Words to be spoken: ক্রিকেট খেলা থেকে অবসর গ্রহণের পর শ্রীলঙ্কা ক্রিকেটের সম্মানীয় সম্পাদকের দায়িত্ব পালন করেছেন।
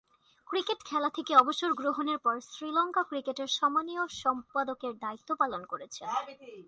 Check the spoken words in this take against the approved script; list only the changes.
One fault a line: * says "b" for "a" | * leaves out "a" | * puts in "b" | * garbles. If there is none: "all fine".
all fine